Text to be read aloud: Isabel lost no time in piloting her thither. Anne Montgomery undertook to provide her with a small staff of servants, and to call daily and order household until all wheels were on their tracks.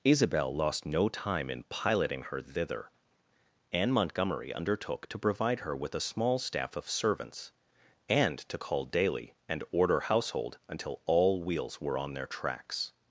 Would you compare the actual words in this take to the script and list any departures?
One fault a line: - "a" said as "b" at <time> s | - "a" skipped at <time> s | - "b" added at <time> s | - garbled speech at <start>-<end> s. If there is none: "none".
none